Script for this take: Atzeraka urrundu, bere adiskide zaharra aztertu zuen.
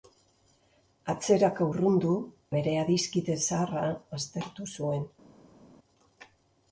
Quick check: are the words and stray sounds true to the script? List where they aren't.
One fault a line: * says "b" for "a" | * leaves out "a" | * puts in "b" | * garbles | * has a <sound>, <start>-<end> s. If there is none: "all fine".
all fine